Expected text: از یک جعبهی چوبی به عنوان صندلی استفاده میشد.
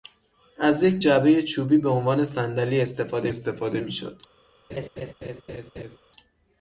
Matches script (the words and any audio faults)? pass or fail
fail